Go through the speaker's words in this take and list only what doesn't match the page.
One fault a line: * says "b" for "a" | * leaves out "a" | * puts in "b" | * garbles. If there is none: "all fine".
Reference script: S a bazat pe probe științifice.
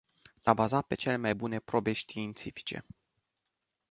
* puts in "cele mai bune"